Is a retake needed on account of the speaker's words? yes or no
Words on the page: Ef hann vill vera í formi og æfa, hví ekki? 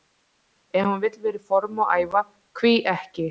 no